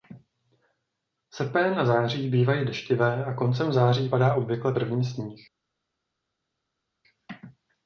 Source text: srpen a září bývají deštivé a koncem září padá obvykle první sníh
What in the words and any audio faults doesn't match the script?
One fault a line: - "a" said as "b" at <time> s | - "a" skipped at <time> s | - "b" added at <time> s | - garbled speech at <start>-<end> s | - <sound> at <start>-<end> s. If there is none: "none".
none